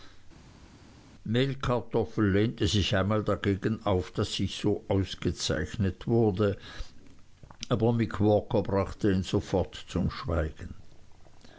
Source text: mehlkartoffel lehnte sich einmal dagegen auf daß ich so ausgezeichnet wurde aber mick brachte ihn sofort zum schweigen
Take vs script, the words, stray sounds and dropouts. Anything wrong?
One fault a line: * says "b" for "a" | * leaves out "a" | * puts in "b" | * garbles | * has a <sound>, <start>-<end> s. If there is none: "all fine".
* puts in "walker"